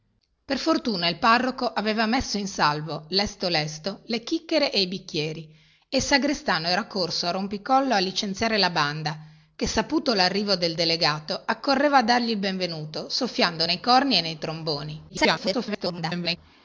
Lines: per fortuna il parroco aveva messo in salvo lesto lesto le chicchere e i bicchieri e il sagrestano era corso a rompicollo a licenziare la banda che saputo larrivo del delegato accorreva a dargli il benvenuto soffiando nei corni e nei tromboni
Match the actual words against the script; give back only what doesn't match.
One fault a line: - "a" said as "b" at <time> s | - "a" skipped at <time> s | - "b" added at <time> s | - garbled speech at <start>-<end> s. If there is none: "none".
- garbled speech at 15.1-16.4 s